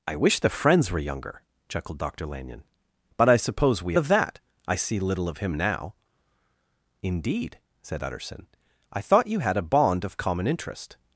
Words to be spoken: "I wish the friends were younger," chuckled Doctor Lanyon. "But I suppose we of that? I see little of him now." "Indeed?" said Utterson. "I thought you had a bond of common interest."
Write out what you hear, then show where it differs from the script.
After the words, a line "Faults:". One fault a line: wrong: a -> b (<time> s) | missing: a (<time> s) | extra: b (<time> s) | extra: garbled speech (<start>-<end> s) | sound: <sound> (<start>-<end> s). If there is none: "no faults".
"I wish the friends were younger," chuckled Doctor Lanyon. "But I suppose we of that? I see little of him now." "Indeed?" said Utterson. "I thought you had a bond of common interest."
Faults:
no faults